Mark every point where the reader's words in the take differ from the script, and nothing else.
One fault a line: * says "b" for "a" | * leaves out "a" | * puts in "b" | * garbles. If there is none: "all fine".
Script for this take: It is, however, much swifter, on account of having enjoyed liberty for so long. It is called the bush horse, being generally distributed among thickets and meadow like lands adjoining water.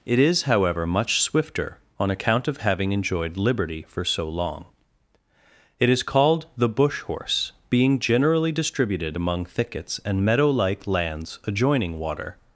all fine